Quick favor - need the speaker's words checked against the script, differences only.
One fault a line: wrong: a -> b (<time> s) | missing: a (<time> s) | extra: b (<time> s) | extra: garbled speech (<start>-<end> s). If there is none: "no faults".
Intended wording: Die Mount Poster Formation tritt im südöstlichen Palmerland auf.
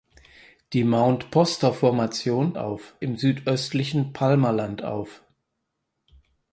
wrong: tritt -> auf (2.6 s)